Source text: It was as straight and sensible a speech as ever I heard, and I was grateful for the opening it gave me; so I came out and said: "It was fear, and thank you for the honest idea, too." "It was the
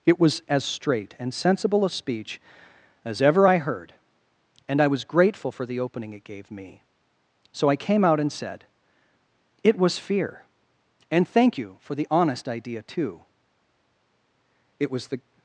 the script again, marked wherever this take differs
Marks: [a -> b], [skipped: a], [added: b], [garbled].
It was as straight and sensible a speech as ever I heard, and I was grateful for the opening it gave me; so I came out and said: "It was fear, and thank you for the honest idea, too." "It was the